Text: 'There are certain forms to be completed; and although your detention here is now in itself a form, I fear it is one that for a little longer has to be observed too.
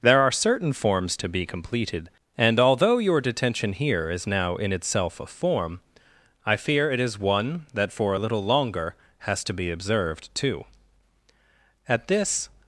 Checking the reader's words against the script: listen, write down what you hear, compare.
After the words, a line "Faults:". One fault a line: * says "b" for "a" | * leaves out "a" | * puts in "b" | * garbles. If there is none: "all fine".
'There are certain forms to be completed; and although your detention here is now in itself a form, I fear it is one that for a little longer has to be observed too. At this
Faults:
* puts in "At this"